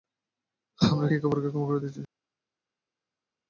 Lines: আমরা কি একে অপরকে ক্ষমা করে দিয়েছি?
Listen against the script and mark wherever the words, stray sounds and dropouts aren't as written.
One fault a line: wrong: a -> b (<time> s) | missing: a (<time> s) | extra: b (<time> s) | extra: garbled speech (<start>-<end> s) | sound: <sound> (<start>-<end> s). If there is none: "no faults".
missing: কি (1.1 s)